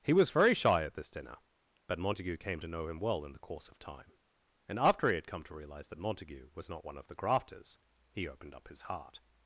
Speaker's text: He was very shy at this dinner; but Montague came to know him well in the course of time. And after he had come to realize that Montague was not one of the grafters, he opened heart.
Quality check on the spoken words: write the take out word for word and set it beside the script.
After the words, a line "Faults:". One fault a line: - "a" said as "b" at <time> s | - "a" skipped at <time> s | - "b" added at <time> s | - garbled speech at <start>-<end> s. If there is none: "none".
He was very shy at this dinner; but Montague came to know him well in the course of time. And after he had come to realize that Montague was not one of the grafters, he opened up his heart.
Faults:
- "up his" added at 8.6 s